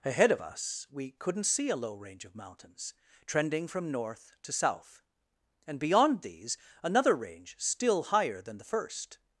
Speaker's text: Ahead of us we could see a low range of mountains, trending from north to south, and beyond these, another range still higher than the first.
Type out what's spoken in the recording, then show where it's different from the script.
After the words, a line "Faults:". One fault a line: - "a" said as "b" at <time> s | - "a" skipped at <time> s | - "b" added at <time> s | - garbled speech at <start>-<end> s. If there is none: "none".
Ahead of us we couldn't see a low range of mountains, trending from north to south, and beyond these, another range still higher than the first.
Faults:
- "could" said as "couldn't" at 1.1 s